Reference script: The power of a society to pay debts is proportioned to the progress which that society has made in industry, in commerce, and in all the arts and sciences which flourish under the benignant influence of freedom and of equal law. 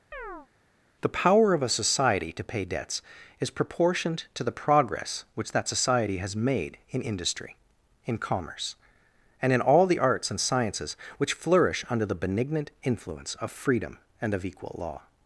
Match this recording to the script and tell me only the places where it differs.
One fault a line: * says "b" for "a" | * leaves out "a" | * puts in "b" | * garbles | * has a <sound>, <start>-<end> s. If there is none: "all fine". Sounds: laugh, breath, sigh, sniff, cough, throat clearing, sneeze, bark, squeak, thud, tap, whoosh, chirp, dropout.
* has a chirp, 0.1-0.5 s